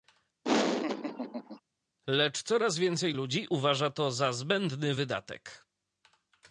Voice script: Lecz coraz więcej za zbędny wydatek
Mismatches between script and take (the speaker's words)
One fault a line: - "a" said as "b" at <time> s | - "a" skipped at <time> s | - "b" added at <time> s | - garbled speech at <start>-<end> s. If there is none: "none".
- "ludzi uważa to" added at 3.1 s